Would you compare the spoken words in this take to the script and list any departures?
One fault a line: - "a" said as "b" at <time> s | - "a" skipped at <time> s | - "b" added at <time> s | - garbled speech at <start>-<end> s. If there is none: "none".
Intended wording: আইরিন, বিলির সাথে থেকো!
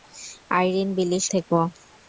- "সাথে" skipped at 1.2 s